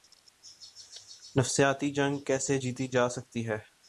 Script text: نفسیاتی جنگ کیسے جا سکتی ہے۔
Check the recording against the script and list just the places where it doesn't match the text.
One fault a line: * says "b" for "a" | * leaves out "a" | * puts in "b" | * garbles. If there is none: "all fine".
* puts in "جیتی"